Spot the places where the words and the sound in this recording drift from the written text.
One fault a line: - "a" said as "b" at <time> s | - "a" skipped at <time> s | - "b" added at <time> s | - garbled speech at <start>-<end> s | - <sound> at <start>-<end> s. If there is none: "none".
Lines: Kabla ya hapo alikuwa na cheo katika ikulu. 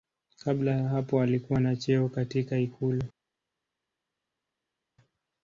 none